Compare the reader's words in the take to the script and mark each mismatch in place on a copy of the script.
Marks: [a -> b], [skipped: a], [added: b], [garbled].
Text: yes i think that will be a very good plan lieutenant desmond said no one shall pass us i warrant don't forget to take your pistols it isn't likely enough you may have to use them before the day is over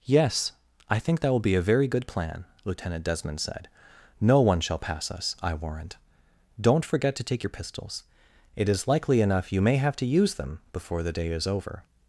yes i think that will be a very good plan lieutenant desmond said no one shall pass us i warrant don't forget to take your pistols it [isn't -> is] likely enough you may have to use them before the day is over